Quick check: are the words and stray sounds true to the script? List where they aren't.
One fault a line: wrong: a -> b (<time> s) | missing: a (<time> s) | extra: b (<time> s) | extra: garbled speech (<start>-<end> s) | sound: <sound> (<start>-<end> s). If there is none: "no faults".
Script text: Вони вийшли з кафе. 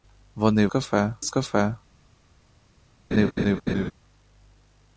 wrong: вийшли -> кафе (0.7 s)
sound: laugh (3.1-3.9 s)